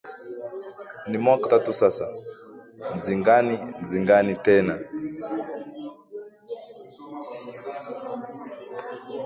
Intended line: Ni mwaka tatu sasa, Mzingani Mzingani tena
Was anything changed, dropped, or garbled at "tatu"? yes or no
no